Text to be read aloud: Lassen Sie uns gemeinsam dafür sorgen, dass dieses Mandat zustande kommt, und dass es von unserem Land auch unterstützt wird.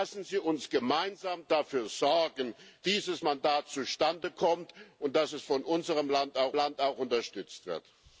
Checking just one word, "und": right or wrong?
right